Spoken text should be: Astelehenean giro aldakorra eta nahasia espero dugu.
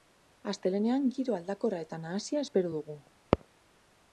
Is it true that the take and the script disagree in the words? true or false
false